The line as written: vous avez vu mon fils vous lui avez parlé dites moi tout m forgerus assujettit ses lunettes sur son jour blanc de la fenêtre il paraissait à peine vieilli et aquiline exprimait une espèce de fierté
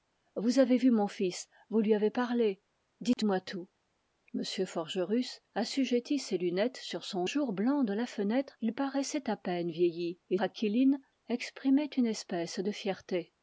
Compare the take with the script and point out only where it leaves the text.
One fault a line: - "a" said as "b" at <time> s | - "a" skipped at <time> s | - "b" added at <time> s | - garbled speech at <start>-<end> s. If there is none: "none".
none